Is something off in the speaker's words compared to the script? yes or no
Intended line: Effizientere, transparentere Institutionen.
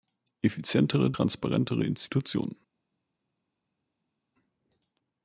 no